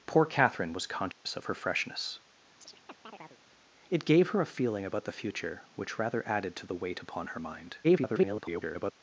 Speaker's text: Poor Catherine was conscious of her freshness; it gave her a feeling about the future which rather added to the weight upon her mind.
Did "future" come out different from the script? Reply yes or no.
no